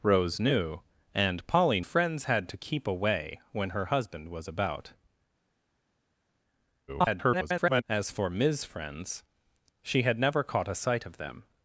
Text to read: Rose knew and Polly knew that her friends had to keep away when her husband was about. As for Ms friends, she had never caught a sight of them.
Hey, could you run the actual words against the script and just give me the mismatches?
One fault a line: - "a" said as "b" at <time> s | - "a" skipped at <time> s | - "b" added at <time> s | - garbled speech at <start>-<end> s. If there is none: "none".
- "knew that her" skipped at 1.8 s
- garbled speech at 6.9-7.8 s